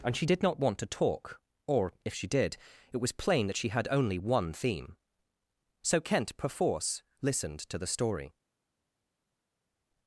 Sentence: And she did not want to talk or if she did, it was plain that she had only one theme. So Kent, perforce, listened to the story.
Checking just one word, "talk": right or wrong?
right